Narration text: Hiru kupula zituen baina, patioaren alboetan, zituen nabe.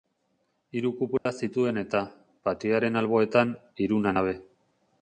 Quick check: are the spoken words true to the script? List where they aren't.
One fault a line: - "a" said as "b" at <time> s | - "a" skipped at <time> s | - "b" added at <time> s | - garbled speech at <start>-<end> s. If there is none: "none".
- "baina" said as "eta" at 1.8 s
- "zituen" said as "hiruna" at 3.9 s